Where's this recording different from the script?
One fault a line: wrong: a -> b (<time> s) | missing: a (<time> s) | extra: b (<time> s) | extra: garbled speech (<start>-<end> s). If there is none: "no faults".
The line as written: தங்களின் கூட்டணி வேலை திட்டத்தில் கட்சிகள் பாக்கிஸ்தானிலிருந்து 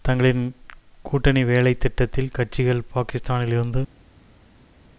no faults